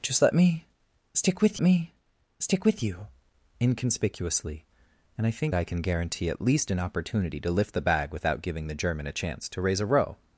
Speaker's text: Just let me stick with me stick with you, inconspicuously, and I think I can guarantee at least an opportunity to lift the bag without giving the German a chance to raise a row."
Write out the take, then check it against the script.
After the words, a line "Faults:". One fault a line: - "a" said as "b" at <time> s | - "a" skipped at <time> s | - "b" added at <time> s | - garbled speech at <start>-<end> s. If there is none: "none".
Just let me stick with me stick with you, inconspicuously, and I think I can guarantee at least an opportunity to lift the bag without giving the German a chance to raise a row."
Faults:
none